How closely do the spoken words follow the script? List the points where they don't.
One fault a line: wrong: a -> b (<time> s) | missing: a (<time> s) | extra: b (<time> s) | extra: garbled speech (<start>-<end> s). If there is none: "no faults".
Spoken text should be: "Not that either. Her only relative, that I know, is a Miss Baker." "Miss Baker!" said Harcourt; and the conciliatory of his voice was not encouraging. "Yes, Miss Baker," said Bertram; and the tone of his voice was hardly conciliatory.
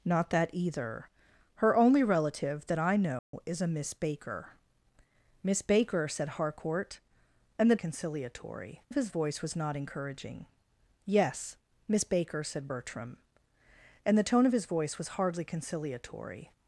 no faults